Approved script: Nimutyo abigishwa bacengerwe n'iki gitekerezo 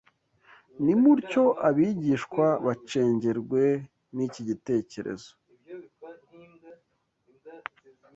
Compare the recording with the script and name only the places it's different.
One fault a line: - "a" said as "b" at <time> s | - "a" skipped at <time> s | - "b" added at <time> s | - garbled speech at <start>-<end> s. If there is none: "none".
none